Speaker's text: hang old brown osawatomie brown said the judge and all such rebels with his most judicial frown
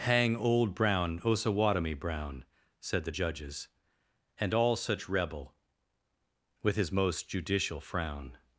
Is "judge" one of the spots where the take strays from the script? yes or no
yes